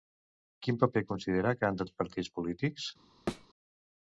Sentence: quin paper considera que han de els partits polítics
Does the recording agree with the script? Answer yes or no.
yes